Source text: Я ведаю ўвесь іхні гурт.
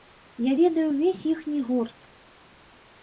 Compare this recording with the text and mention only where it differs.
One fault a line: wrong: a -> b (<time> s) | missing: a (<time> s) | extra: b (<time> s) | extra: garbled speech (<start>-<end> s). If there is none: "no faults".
no faults